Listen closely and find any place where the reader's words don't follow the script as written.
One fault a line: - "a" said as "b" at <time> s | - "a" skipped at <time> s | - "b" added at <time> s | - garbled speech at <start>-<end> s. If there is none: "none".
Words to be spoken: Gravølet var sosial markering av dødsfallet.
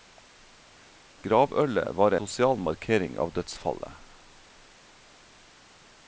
none